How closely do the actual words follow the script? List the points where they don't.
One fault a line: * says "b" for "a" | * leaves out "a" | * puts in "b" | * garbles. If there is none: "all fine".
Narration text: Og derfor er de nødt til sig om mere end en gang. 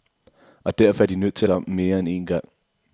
all fine